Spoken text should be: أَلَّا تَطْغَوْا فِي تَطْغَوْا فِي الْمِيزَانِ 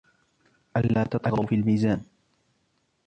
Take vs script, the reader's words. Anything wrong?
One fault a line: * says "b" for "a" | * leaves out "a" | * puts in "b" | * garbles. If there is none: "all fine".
* leaves out "تَطْغَوْا فِي"